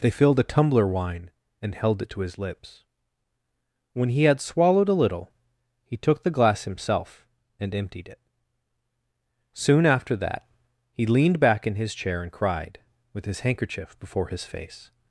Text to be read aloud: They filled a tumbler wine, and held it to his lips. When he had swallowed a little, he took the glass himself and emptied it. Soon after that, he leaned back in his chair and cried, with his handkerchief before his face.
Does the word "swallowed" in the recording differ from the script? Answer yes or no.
no